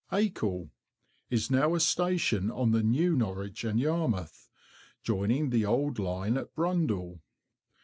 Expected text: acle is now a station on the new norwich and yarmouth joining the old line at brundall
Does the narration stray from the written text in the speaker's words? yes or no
no